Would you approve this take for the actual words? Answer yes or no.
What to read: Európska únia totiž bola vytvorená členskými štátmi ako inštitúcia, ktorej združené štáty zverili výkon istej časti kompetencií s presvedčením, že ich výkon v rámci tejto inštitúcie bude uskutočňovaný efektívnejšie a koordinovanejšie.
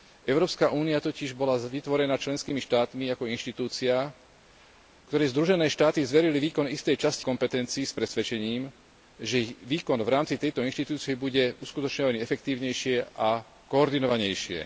yes